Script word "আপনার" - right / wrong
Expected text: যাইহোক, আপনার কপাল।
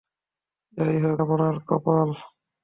right